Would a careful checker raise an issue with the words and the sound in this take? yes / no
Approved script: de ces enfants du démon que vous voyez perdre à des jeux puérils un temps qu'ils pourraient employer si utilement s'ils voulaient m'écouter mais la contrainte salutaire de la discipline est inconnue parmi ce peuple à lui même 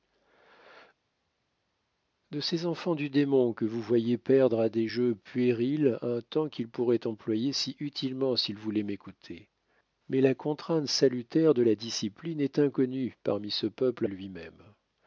no